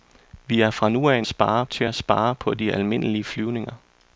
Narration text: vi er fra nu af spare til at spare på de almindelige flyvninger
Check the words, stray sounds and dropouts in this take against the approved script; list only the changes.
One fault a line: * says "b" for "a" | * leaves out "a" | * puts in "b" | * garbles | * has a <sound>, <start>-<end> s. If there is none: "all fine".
all fine